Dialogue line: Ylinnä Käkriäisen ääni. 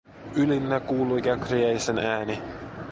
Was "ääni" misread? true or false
false